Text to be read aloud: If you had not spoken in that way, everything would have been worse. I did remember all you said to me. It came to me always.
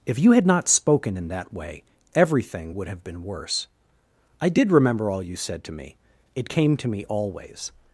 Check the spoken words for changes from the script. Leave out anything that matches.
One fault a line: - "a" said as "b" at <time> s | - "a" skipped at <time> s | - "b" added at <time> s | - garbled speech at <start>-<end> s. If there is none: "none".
none